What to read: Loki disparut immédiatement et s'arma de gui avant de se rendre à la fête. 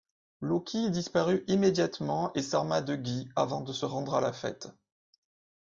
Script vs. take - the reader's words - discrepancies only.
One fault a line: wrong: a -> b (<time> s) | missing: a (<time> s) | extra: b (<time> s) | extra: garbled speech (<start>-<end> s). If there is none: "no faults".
no faults